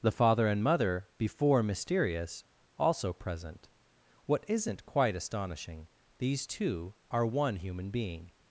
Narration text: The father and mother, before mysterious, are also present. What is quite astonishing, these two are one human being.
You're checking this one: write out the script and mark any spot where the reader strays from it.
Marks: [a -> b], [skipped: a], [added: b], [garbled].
The father and mother, before mysterious, [skipped: are] also present. What [is -> isn't] quite astonishing, these two are one human being.